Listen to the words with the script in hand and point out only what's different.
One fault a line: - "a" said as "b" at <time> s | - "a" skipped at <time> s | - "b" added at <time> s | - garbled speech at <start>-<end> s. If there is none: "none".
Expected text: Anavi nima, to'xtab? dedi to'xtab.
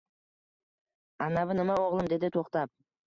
- "to'xtab" said as "o'g'lim" at 1.9 s